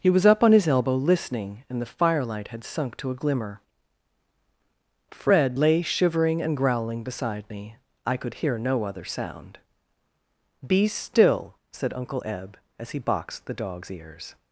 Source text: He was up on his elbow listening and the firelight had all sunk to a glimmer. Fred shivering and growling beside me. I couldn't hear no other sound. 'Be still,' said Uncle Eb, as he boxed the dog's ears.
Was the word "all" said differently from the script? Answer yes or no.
yes